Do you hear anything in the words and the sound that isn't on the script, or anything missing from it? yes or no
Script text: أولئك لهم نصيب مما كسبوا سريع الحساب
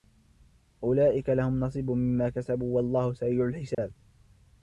yes